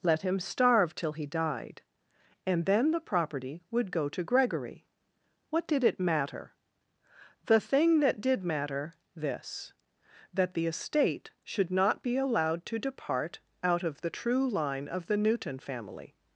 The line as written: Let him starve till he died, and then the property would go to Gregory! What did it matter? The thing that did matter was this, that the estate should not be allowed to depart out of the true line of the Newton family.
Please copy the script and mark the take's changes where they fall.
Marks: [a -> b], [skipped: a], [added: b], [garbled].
Let him starve till he died, and then the property would go to Gregory! What did it matter? The thing that did matter [skipped: was] this, that the estate should not be allowed to depart out of the true line of the Newton family.